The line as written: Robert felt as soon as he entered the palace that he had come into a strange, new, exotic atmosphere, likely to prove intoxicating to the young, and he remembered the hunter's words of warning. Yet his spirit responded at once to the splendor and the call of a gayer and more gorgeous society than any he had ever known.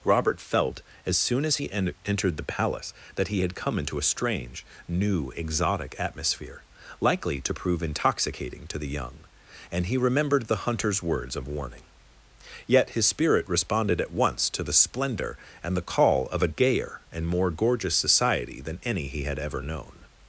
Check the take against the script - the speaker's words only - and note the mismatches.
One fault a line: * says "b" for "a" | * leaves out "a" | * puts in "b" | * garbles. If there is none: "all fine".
* puts in "en"